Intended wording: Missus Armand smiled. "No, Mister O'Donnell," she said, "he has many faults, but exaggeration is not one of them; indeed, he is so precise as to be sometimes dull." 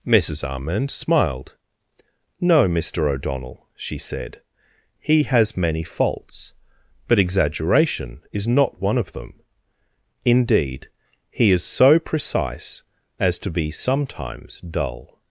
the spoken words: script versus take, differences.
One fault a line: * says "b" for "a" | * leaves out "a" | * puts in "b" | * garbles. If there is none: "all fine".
all fine